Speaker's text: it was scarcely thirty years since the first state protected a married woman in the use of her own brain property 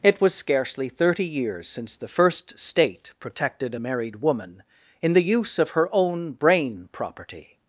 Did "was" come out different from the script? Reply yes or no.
no